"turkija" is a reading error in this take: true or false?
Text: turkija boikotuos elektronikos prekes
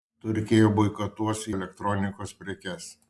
false